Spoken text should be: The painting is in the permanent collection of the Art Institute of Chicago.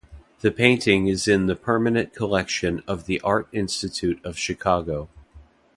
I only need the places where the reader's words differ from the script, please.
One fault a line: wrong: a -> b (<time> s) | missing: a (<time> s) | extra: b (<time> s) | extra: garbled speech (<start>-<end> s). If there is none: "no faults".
no faults